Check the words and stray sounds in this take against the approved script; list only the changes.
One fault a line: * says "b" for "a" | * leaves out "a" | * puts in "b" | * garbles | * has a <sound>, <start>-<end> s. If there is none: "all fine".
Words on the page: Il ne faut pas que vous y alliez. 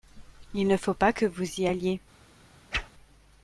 * has a whoosh, 2.7-2.9 s